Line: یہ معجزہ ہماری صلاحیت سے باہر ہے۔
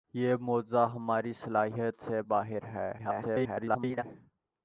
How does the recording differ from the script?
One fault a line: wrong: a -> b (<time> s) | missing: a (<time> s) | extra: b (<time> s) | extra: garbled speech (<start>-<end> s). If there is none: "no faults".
extra: garbled speech (3.0-4.0 s)